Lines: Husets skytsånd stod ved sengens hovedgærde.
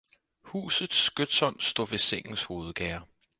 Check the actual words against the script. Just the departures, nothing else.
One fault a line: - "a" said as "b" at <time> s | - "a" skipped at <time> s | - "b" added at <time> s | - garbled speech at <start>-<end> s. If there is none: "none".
none